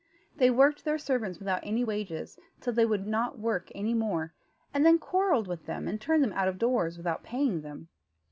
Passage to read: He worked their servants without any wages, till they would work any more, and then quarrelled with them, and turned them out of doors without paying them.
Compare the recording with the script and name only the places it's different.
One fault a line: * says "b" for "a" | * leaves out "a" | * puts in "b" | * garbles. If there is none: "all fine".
* says "They" for "He"
* puts in "not"